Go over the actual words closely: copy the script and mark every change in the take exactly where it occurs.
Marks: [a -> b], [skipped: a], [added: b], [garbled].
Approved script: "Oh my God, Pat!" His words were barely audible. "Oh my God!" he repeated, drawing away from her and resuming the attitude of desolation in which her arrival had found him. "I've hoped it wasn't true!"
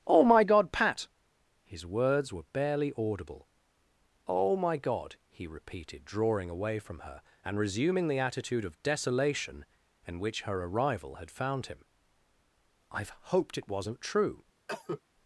"Oh my God, Pat!" His words were barely audible. "Oh my God!" he repeated, drawing away from her and resuming the attitude of desolation in which her arrival had found him. "I've hoped it wasn't true!"